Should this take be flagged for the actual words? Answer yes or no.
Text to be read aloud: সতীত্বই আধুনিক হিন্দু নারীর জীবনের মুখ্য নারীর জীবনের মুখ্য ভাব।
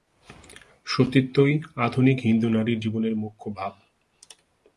yes